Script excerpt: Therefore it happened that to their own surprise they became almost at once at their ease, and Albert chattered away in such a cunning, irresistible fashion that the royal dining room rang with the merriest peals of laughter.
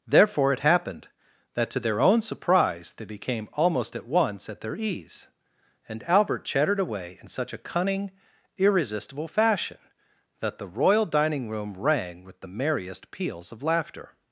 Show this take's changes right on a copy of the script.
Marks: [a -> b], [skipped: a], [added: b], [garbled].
Therefore it happened that to their own surprise they became almost at once at their ease, and Albert chattered away in such a cunning, irresistible fashion that the royal dining room rang with the merriest peals of laughter.